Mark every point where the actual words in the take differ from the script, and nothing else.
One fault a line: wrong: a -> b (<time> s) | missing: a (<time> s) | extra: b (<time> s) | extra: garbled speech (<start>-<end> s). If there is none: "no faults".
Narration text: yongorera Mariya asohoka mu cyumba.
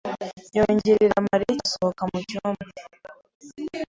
no faults